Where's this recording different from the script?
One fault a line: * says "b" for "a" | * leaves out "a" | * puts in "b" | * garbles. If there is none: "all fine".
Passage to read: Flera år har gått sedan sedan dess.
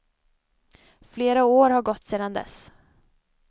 * leaves out "sedan"